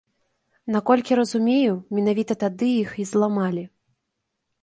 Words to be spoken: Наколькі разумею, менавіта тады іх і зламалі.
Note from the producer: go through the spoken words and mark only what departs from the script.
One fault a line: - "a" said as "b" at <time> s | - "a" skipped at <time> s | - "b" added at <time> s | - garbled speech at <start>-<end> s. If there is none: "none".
none